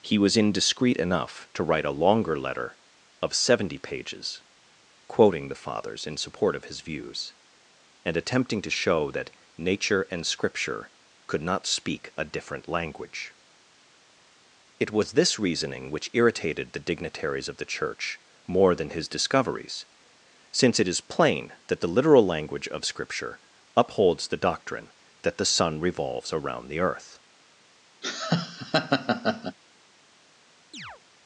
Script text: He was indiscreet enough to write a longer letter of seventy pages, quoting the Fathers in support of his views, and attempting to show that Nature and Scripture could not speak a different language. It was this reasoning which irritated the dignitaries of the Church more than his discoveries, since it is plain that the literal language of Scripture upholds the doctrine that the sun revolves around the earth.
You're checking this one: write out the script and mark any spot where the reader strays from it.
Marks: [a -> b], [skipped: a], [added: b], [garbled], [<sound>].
He was indiscreet enough to write a longer letter of seventy pages, quoting the Fathers in support of his views, and attempting to show that Nature and Scripture could not speak a different language. It was this reasoning which irritated the dignitaries of the Church more than his discoveries, since it is plain that the literal language of Scripture upholds the doctrine that the sun revolves around the earth. [laugh] [chirp]